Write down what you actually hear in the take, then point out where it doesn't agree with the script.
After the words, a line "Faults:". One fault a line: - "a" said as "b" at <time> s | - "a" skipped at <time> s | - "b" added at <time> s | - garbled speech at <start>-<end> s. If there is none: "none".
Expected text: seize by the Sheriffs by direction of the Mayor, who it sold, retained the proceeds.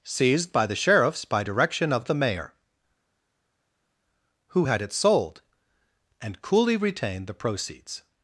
seized by the Sheriffs by direction of the Mayor, who had it sold, and coolly retained the proceeds.
Faults:
- "seize" said as "seized" at 0.0 s
- "had" added at 4.7 s
- "and coolly" added at 6.2 s